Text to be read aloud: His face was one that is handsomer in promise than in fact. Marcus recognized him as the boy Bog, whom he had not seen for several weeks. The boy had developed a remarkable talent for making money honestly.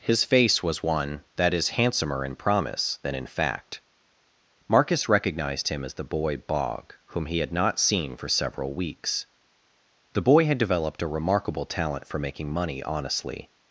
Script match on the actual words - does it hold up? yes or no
yes